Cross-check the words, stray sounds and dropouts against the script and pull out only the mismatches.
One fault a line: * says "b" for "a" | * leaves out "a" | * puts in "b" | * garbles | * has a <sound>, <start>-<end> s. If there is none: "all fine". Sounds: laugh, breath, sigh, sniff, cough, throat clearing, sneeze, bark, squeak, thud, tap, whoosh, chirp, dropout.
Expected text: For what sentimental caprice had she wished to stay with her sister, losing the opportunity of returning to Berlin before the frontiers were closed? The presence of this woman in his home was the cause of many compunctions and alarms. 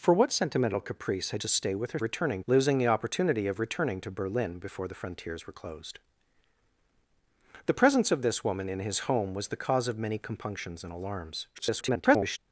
* leaves out "she wished"
* says "returning" for "sister"
* garbles